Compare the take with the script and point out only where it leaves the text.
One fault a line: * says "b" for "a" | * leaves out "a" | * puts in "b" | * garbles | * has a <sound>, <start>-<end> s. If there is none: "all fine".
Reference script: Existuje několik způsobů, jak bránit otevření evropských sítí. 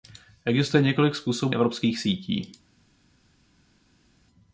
* leaves out "jak bránit otevření"